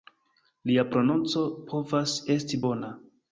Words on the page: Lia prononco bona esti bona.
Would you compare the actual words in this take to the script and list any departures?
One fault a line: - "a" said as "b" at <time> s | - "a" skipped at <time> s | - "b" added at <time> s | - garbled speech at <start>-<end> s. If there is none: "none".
- "bona" said as "povas" at 1.7 s